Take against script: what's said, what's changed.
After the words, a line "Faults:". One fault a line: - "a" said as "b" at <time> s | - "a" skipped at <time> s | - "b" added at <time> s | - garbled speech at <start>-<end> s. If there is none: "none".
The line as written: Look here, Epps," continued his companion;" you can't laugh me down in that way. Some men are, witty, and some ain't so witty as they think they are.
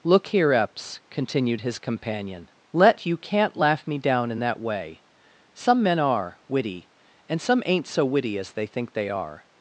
Look here, Epps," continued his companion;" let you can't laugh me down in that way. Some men are, witty, and some ain't so witty as they think they are.
Faults:
- "let" added at 2.7 s